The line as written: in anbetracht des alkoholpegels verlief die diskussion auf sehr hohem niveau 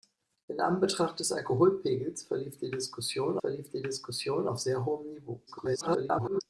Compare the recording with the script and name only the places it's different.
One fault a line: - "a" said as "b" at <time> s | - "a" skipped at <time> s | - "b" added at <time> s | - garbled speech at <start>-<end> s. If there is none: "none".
- "verlief die diskussion" added at 3.4 s
- garbled speech at 5.5-6.4 s